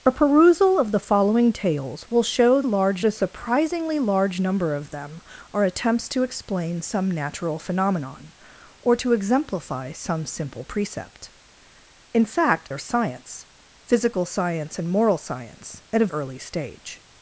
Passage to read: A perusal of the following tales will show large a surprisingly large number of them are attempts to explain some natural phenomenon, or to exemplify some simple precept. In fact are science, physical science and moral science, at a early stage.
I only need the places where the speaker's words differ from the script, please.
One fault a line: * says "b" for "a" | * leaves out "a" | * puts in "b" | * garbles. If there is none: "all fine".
all fine